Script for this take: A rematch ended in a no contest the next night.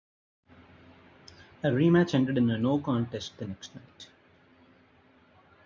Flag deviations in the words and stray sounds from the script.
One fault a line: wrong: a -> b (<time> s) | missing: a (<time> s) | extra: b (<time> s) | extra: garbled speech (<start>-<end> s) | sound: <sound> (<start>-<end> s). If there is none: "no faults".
no faults